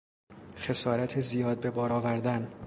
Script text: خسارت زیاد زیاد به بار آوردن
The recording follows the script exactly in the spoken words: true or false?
false